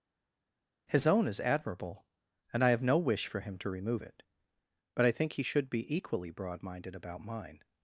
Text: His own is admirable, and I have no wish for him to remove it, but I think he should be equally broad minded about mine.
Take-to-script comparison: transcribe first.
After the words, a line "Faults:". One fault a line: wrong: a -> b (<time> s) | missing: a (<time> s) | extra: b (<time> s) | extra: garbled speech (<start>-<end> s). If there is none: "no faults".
His own is admirable, and I have no wish for him to remove it, but I think he should be equally broad minded about mine.
Faults:
no faults